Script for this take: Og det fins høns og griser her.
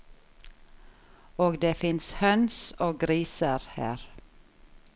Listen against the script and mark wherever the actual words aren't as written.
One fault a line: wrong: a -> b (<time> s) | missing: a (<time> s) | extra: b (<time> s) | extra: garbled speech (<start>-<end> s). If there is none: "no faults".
no faults